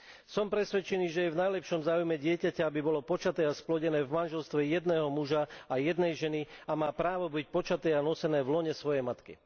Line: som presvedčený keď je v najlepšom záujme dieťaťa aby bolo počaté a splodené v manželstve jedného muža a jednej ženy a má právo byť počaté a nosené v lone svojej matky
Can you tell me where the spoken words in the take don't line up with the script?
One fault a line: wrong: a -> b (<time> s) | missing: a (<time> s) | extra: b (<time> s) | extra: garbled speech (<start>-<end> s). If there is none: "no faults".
wrong: keď -> že (1.1 s)